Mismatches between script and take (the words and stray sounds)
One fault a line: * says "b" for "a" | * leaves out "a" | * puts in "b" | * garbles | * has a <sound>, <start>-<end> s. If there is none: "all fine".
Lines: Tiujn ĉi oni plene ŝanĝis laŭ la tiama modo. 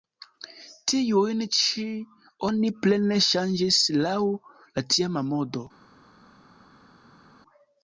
all fine